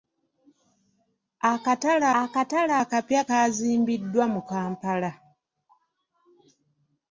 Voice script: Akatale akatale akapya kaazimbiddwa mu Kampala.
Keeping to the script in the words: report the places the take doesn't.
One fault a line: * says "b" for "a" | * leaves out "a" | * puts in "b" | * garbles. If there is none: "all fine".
all fine